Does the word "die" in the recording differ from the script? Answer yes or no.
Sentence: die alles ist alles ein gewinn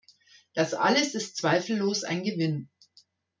yes